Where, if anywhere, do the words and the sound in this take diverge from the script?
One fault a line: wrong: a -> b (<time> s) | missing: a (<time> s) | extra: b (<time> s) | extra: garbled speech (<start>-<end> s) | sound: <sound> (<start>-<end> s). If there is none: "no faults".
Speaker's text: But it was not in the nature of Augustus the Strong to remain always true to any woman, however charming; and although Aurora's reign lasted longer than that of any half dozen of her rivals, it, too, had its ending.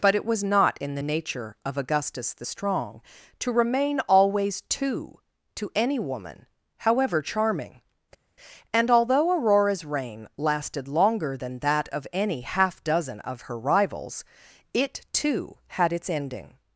wrong: true -> two (4.6 s)